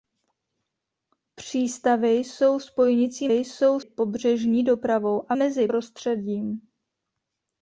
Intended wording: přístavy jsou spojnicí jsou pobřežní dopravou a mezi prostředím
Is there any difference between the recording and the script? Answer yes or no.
no